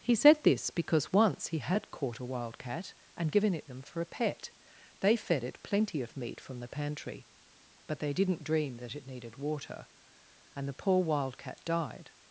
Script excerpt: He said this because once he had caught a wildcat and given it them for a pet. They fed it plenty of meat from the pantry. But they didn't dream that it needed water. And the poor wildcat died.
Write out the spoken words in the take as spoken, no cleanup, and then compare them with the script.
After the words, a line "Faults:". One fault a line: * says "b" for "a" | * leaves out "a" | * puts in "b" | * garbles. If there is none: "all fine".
He said this because once he had caught a wildcat and given it them for a pet. They fed it plenty of meat from the pantry. But they didn't dream that it needed water. And the poor wildcat died.
Faults:
all fine